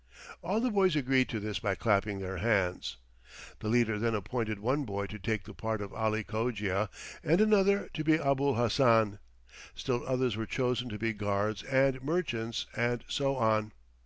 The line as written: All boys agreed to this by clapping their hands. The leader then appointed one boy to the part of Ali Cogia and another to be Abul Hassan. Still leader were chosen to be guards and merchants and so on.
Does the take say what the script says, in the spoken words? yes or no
no